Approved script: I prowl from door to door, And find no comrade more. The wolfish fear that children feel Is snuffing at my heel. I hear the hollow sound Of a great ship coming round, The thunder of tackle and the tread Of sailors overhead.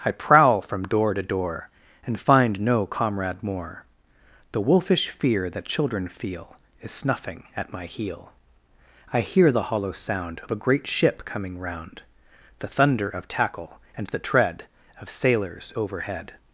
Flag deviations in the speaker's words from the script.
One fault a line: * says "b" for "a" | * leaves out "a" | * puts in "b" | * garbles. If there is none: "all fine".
all fine